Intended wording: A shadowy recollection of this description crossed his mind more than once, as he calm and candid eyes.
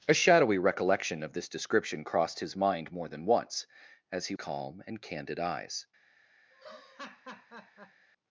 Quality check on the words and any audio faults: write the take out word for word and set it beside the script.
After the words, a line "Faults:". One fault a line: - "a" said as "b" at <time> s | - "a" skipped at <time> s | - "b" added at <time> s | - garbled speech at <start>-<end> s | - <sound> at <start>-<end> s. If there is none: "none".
A shadowy recollection of this description crossed his mind more than once, as he calm and candid eyes.
Faults:
- laugh at 6.5-8.1 s